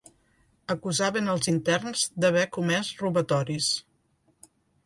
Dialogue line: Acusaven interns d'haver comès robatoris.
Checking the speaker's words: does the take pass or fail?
fail